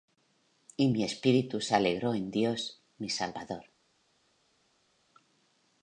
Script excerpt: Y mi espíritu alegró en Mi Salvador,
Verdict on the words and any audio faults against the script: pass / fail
fail